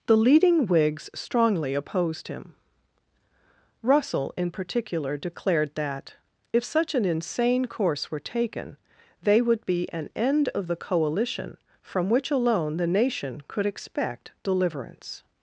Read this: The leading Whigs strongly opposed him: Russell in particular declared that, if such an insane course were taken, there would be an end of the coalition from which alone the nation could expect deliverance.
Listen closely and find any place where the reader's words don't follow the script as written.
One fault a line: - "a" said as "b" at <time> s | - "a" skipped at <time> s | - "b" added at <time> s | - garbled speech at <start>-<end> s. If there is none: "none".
- "there" said as "they" at 9.2 s